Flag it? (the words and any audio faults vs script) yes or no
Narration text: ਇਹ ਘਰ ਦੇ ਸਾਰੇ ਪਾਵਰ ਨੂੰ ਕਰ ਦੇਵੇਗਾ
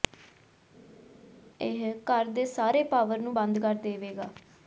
yes